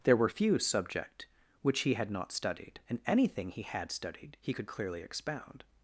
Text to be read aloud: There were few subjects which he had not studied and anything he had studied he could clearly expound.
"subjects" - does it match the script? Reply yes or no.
no